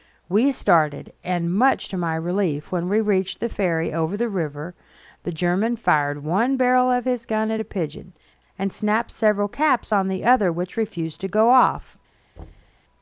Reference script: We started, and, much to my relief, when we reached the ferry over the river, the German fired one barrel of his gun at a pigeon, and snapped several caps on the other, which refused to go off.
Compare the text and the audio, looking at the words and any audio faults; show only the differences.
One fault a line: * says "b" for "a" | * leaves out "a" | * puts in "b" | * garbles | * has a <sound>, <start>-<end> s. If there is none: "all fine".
* has a thud, 12.4-12.8 s